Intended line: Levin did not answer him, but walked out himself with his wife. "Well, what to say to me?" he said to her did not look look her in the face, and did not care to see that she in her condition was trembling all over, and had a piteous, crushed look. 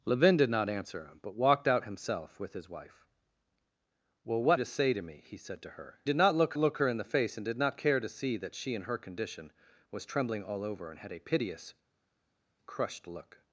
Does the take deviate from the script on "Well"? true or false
false